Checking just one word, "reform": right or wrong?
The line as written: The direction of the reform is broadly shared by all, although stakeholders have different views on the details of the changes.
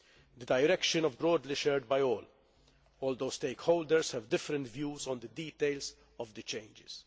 wrong